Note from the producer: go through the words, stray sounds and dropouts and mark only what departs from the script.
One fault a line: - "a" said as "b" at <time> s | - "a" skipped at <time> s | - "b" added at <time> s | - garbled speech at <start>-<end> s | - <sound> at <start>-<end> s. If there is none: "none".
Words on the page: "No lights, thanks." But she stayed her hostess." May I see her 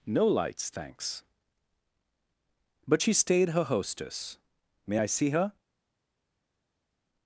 none